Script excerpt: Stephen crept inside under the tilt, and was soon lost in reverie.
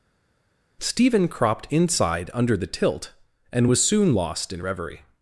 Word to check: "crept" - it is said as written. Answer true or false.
false